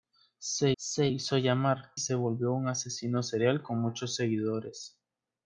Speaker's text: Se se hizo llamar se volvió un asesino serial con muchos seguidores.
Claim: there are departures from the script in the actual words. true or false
false